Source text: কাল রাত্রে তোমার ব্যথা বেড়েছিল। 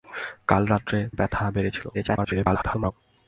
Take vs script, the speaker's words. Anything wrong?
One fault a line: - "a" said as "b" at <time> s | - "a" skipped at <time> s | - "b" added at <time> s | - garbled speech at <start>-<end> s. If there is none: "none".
- "তোমার" skipped at 1.0 s
- garbled speech at 1.9-2.9 s